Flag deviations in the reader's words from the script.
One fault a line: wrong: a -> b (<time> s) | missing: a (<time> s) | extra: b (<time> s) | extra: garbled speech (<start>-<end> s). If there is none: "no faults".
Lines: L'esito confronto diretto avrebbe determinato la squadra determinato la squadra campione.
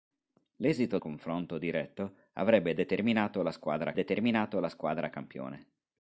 no faults